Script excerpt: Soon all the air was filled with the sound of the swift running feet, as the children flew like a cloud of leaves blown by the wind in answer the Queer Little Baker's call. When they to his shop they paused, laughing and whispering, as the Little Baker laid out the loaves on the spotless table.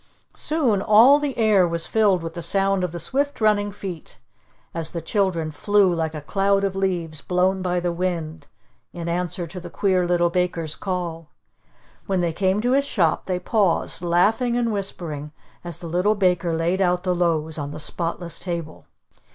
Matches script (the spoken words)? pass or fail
fail